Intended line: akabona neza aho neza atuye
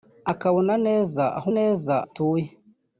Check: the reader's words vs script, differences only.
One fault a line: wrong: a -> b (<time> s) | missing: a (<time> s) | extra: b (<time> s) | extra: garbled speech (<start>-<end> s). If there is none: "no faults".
no faults